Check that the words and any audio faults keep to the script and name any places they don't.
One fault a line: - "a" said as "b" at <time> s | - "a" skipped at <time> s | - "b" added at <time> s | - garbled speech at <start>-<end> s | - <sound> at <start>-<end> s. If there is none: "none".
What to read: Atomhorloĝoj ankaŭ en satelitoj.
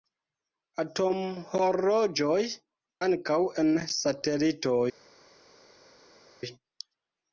none